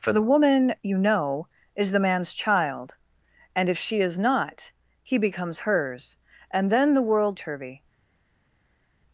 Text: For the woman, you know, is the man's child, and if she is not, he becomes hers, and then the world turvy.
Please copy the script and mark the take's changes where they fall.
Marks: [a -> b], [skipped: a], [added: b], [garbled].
For the woman, you know, is the man's child, and if she is not, he becomes hers, and then the world turvy.